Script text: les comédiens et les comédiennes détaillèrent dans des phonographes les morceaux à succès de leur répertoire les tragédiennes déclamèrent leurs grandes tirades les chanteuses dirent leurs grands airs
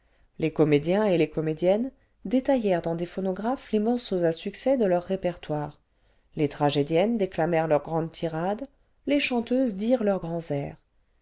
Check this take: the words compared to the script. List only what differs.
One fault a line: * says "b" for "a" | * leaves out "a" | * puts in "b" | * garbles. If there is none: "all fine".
all fine